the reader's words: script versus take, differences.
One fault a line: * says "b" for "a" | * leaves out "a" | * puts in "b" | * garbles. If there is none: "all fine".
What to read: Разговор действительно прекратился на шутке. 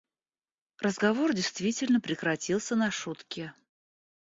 all fine